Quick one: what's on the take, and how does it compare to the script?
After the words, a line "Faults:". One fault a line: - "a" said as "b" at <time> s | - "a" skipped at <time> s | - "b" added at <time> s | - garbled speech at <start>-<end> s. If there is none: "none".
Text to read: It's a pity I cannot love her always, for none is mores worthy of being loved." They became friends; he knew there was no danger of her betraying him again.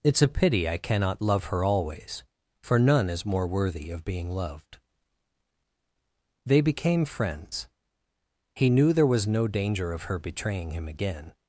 It's a pity I cannot love her always, for none is more worthy of being loved." They became friends; he knew there was no danger of her betraying him again.
Faults:
- "mores" said as "more" at 3.2 s